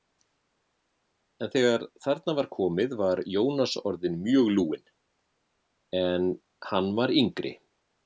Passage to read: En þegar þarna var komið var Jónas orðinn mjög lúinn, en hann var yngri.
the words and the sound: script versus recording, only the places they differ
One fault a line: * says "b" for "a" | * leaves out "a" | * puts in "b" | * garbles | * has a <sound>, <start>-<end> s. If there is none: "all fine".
all fine